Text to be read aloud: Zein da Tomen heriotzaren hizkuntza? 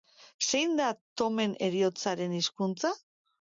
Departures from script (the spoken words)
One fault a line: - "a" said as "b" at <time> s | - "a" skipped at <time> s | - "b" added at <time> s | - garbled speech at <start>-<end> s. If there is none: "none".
none